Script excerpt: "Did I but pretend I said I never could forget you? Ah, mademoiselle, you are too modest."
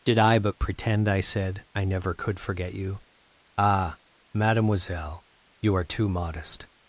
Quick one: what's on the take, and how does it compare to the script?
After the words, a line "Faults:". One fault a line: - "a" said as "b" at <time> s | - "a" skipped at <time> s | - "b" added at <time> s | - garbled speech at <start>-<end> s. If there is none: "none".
"Did I but pretend I said I never could forget you? Ah, mademoiselle, you are too modest."
Faults:
none